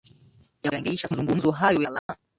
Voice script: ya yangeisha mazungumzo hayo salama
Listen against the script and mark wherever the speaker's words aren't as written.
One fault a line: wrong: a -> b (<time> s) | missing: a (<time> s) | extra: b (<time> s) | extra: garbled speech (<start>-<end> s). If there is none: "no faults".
no faults